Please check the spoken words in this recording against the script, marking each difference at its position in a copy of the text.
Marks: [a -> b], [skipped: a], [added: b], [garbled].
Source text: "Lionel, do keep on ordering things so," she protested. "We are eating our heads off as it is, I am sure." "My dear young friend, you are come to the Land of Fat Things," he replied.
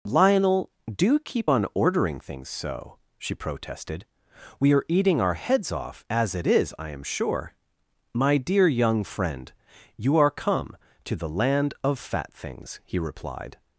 "Lionel, do keep on ordering things so," she protested. "We are eating our heads off as it is, I am sure." "My dear young friend, you are come to the Land of Fat Things," he replied.